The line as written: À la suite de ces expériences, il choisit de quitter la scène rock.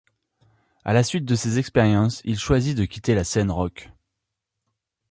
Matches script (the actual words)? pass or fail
pass